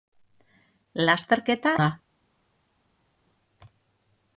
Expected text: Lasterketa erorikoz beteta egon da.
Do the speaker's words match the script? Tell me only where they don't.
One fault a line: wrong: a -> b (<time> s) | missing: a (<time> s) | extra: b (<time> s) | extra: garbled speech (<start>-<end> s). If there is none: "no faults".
missing: erorikoz beteta egon (1.8 s)